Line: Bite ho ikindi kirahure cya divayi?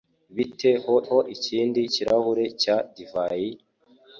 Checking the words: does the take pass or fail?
fail